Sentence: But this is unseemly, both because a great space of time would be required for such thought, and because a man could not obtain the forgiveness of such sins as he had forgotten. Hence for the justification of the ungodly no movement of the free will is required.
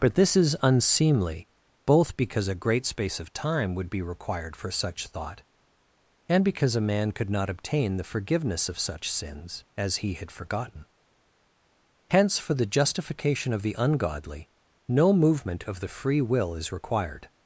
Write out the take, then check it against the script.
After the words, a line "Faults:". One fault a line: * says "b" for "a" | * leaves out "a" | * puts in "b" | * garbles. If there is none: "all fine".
But this is unseemly, both because a great space of time would be required for such thought, and because a man could not obtain the forgiveness of such sins as he had forgotten. Hence for the justification of the ungodly no movement of the free will is required.
Faults:
all fine